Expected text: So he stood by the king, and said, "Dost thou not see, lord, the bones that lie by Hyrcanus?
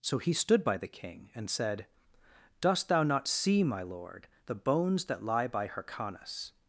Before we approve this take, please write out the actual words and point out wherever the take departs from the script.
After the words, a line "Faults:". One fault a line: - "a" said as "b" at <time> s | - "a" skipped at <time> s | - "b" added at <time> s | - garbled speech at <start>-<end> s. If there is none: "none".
So he stood by the king, and said, "Dost thou not see, my lord, the bones that lie by Hyrcanus?
Faults:
- "my" added at 3.6 s